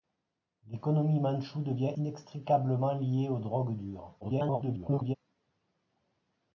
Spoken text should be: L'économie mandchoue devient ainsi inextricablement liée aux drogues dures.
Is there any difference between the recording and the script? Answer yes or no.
yes